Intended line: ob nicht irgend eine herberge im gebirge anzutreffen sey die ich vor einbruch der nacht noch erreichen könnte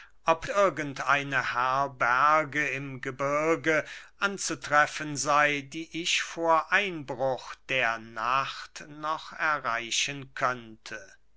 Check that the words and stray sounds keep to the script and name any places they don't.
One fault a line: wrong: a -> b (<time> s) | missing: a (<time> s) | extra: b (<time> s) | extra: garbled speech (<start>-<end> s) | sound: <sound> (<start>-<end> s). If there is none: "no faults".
missing: nicht (0.5 s)